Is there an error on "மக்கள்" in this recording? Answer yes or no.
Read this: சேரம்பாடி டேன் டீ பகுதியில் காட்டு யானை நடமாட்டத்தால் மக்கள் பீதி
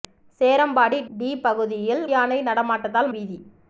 yes